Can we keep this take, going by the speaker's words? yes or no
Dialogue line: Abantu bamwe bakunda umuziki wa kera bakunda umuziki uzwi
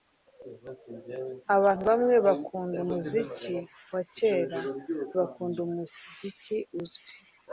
yes